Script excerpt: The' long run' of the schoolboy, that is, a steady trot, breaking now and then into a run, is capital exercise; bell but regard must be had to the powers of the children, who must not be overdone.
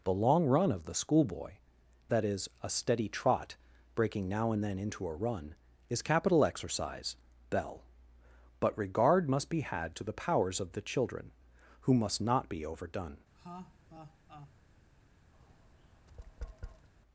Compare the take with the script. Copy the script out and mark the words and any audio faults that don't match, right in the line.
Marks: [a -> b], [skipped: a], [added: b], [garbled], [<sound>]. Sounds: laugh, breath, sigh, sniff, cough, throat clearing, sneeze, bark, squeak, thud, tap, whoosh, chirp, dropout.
The' long run' of the schoolboy, that is, a steady trot, breaking now and then into a run, is capital exercise; bell but regard must be had to the powers of the children, who must not be overdone. [laugh] [tap]